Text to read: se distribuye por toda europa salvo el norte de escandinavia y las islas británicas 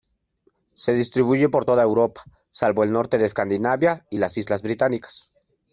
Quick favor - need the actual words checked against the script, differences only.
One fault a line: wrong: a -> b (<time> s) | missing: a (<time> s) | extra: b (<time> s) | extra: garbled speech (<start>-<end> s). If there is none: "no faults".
no faults